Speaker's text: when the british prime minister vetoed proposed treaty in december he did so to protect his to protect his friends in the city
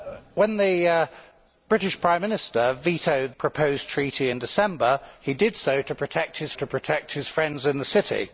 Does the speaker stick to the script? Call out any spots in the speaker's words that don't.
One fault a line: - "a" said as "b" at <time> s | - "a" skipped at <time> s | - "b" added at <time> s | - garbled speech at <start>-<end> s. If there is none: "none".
none